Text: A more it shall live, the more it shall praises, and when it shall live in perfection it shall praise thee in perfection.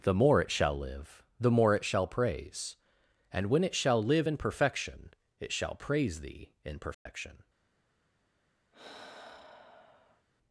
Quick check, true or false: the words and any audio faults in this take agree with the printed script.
false